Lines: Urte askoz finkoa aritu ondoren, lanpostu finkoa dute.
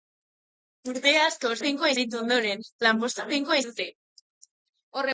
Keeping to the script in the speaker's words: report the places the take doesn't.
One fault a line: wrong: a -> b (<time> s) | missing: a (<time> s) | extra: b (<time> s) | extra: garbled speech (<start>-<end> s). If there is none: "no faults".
no faults